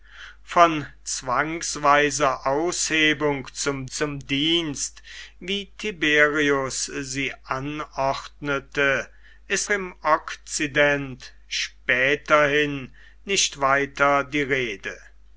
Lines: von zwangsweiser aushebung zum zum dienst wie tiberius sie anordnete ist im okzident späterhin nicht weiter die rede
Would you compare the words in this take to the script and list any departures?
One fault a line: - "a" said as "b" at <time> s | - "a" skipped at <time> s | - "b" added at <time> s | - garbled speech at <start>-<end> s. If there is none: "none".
none